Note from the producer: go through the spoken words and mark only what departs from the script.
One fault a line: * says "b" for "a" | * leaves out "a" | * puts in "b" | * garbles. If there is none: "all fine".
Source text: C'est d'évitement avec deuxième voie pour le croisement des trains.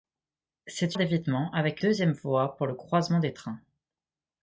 all fine